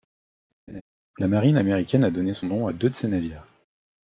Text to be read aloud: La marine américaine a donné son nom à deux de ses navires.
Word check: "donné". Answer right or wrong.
right